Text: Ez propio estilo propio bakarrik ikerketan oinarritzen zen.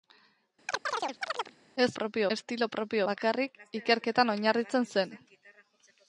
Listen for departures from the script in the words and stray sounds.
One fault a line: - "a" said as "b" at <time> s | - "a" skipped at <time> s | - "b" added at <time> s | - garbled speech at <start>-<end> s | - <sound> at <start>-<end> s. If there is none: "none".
- chirp at 0.7-1.6 s